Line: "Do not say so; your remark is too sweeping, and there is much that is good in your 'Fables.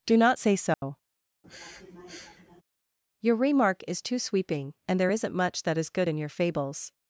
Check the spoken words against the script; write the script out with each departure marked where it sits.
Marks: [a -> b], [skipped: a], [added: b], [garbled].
"Do not say so; your remark is too sweeping, and there [is -> isn't] much that is good in your 'Fables.